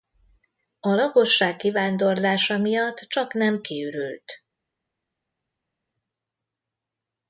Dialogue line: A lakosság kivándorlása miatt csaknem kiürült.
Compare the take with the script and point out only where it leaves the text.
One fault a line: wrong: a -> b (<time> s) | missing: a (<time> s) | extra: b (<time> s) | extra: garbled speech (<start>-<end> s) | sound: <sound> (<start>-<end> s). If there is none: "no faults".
no faults